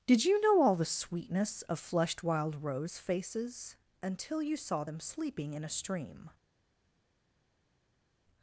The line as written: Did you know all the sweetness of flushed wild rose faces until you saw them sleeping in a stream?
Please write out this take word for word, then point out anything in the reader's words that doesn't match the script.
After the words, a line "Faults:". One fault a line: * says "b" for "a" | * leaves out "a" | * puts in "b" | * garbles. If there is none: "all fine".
Did you know all the sweetness of flushed wild rose faces until you saw them sleeping in a stream?
Faults:
all fine